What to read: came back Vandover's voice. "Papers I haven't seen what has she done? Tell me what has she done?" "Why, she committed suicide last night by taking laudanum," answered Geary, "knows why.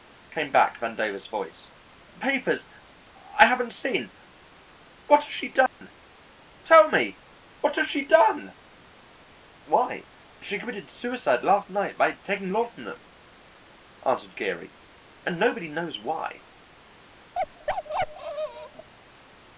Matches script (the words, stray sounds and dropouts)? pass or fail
fail